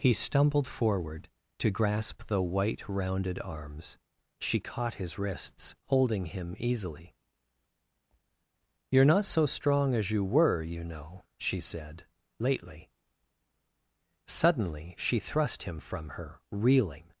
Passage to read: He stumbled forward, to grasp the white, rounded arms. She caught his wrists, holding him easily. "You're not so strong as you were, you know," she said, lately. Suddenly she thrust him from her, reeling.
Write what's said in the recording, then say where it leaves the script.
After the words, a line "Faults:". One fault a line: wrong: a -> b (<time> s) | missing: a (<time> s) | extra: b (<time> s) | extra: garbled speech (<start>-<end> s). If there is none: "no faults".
He stumbled forward, to grasp the white, rounded arms. She caught his wrists, holding him easily. "You're not so strong as you were, you know," she said, lately. Suddenly she thrust him from her, reeling.
Faults:
no faults